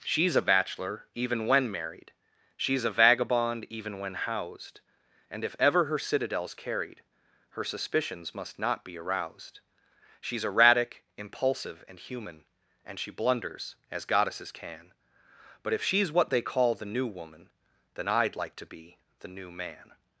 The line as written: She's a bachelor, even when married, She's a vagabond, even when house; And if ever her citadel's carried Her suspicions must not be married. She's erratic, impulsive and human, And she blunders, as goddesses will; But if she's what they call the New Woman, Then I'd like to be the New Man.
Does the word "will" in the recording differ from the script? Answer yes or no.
yes